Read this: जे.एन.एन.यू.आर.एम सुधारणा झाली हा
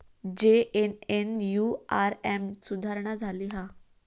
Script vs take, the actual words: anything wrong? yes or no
no